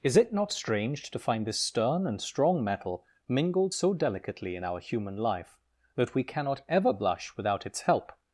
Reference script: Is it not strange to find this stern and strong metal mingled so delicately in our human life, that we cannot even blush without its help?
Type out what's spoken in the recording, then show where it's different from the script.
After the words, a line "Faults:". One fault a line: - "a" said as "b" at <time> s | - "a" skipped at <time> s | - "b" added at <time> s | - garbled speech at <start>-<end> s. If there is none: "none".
Is it not strange to find this stern and strong metal mingled so delicately in our human life, that we cannot ever blush without its help?
Faults:
- "even" said as "ever" at 6.7 s